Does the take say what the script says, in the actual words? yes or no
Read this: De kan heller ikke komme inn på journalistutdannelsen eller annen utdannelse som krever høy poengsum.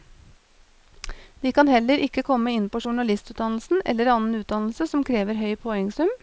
yes